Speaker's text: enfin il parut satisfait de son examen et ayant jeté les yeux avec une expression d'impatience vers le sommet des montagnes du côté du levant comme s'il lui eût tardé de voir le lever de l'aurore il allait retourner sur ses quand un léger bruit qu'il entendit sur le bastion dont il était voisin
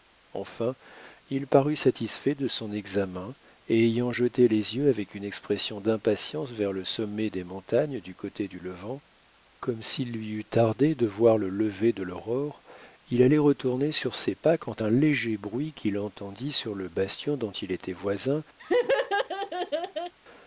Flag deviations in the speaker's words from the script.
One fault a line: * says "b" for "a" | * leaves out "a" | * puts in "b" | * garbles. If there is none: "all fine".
* puts in "pas"